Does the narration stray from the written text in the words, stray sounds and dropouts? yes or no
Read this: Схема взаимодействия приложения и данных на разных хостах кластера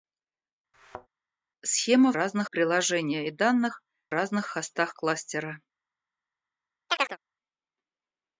yes